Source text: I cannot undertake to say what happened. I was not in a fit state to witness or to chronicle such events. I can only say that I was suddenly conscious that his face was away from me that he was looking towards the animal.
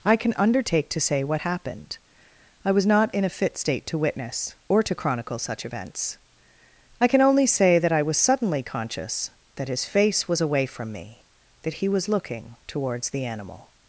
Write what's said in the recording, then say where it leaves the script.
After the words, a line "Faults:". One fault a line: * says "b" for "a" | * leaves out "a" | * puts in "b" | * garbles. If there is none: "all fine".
I can undertake to say what happened. I was not in a fit state to witness or to chronicle such events. I can only say that I was suddenly conscious that his face was away from me that he was looking towards the animal.
Faults:
* says "can" for "cannot"